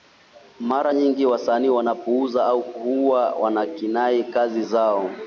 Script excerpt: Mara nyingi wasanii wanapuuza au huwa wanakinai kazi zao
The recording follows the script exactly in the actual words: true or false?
true